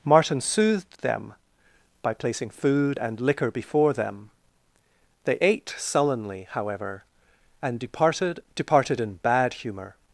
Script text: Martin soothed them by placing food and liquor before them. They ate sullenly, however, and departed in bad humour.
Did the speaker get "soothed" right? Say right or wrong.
right